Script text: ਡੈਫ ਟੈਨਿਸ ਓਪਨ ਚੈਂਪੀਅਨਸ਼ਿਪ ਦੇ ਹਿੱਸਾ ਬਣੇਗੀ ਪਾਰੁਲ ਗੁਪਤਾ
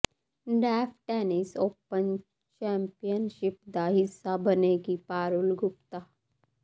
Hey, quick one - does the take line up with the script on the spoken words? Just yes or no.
no